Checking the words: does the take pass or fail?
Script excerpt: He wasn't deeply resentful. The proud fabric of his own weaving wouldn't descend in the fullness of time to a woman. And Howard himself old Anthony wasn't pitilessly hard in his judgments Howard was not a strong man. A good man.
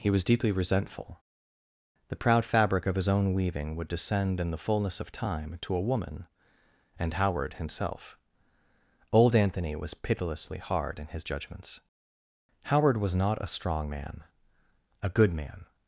fail